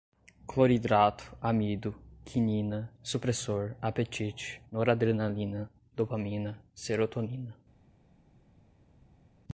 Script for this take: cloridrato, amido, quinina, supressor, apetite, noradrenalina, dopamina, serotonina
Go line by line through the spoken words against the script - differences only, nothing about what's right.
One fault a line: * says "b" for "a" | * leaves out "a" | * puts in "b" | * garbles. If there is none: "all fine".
all fine